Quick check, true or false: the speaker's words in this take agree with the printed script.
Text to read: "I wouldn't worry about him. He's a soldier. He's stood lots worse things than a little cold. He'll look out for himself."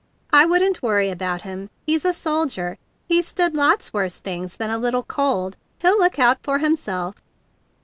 true